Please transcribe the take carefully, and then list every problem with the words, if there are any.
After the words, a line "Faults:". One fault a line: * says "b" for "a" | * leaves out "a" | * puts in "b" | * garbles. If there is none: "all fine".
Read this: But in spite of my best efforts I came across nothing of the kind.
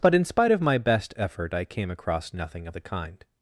But in spite of my best effort I came across nothing of the kind.
Faults:
* says "effort" for "efforts"